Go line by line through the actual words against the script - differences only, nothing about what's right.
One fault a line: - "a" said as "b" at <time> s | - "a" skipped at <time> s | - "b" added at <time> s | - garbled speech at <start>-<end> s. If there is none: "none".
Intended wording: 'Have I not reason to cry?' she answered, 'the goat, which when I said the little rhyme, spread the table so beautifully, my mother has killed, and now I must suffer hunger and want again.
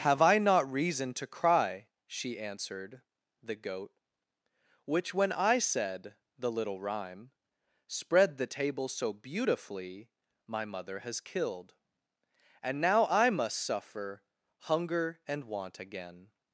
none